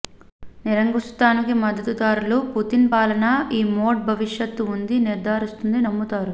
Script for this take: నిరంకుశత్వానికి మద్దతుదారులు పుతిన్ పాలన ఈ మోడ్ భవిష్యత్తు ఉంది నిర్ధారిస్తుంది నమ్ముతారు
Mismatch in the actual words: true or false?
false